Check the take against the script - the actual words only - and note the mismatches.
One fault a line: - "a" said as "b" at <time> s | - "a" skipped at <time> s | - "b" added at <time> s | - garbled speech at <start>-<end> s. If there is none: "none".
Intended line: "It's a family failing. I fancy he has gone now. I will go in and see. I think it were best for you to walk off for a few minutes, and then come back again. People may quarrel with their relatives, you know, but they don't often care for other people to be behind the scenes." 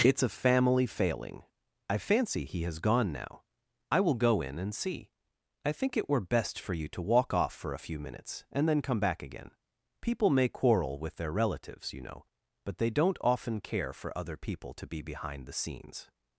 none